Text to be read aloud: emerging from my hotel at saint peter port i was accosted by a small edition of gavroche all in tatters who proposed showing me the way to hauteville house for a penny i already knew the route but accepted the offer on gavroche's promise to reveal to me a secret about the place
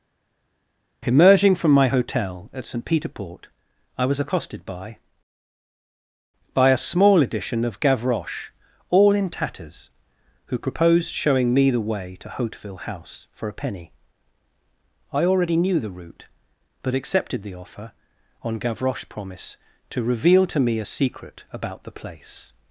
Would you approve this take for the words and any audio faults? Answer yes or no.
no